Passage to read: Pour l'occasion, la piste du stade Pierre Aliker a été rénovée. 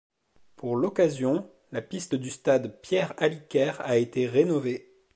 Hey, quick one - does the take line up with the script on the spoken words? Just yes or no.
yes